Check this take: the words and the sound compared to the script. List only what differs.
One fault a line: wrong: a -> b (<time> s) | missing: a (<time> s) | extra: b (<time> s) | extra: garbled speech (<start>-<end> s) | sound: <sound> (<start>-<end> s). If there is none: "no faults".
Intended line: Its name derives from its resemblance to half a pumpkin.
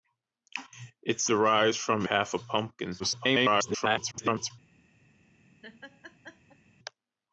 missing: name (1.3 s)
missing: its resemblance to (2.1 s)
extra: garbled speech (3.0-4.5 s)
sound: laugh (5.6-6.6 s)